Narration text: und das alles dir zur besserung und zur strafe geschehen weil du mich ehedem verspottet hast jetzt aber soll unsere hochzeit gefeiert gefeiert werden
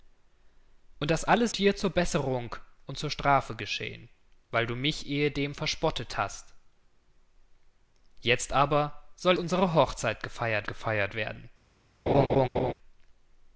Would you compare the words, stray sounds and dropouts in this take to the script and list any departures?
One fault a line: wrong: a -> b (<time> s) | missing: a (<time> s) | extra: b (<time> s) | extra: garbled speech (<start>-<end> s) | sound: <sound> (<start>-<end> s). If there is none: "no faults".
sound: laugh (12.1-12.7 s)